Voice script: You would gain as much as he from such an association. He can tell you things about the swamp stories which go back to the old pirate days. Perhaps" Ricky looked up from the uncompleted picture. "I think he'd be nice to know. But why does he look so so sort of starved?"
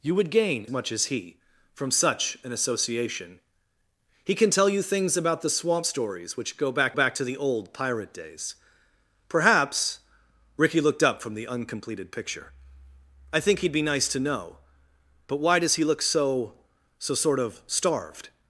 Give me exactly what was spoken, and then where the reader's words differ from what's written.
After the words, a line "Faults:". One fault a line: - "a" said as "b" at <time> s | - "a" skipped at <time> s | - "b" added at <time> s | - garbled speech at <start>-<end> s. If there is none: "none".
You would gain much as he from such an association. He can tell you things about the swamp stories which go back back to the old pirate days. Perhaps" Ricky looked up from the uncompleted picture. "I think he'd be nice to know. But why does he look so so sort of starved?"
Faults:
- "as" skipped at 0.7 s
- "back" added at 6.9 s